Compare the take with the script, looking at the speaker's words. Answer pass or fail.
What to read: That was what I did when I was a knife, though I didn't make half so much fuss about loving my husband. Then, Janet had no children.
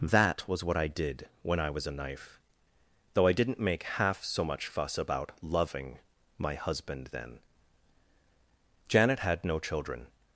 pass